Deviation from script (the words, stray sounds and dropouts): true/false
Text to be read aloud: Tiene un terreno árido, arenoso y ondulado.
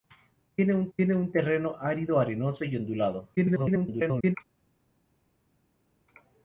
true